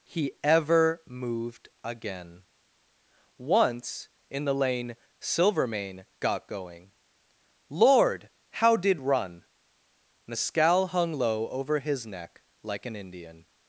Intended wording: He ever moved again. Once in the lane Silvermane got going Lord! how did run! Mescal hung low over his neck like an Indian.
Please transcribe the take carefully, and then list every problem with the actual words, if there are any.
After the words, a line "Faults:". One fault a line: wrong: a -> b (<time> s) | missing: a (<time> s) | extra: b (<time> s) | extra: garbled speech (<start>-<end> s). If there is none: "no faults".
He ever moved again. Once in the lane Silvermane got going Lord! how did run! Mescal hung low over his neck like an Indian.
Faults:
no faults